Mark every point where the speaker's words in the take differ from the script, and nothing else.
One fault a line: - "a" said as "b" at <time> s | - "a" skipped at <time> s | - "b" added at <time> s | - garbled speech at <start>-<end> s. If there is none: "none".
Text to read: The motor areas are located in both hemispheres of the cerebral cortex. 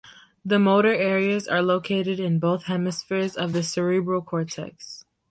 none